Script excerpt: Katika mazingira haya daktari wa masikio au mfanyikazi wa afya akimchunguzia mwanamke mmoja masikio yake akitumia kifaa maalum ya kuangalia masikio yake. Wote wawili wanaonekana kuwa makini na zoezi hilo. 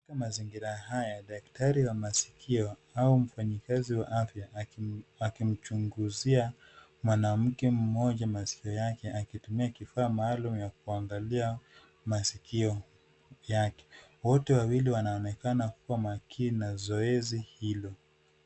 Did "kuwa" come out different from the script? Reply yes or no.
no